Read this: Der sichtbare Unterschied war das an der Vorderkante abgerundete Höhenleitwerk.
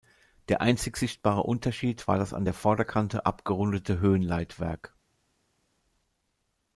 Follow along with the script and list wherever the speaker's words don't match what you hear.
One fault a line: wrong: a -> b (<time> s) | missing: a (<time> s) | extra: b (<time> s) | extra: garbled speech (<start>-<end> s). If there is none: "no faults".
extra: einzig (0.6 s)